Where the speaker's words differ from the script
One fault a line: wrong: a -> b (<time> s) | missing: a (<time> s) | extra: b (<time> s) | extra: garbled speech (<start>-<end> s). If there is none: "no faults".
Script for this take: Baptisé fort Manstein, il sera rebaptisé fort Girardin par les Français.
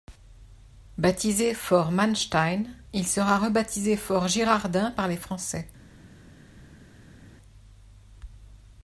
no faults